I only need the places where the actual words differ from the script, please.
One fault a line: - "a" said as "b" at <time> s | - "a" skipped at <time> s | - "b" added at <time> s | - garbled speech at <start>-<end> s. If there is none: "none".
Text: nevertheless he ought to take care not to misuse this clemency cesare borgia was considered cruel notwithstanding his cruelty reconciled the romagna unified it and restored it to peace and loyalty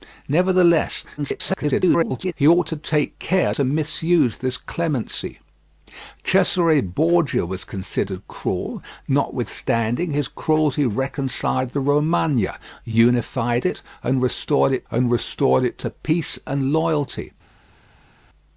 - garbled speech at 1.2-2.3 s
- "not" skipped at 3.5 s
- "and restored it" added at 14.9 s